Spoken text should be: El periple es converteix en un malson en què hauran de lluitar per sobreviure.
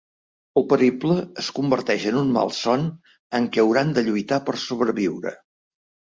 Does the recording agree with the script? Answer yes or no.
yes